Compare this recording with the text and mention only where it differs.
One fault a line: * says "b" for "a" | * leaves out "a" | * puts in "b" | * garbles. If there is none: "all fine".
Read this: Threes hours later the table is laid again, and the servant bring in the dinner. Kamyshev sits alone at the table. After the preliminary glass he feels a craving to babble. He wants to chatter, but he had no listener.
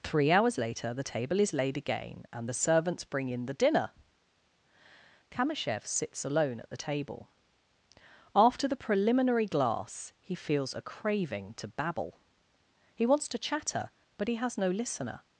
* says "Three" for "Threes"
* says "servants" for "servant"
* says "has" for "had"